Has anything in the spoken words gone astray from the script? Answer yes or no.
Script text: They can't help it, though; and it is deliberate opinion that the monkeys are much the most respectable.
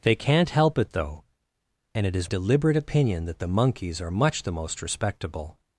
no